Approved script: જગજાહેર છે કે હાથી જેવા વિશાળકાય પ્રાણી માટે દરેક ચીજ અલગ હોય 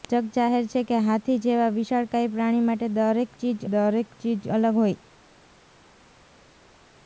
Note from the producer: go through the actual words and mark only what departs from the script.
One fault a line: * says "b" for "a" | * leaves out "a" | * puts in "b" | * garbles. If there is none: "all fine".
* puts in "દરેક ચીજ"